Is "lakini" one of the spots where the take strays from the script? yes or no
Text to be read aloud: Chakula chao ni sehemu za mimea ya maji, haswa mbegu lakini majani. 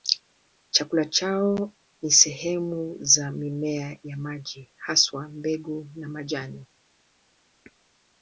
yes